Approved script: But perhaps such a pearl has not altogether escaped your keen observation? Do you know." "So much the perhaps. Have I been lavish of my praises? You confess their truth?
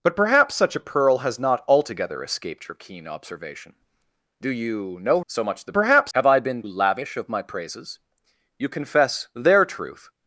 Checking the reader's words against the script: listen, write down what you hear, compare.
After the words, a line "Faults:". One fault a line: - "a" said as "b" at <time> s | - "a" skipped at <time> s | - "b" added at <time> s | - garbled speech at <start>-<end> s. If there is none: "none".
But perhaps such a pearl has not altogether escaped your keen observation? Do you know." "So much the perhaps. Have I been lavish of my praises? You confess their truth?
Faults:
none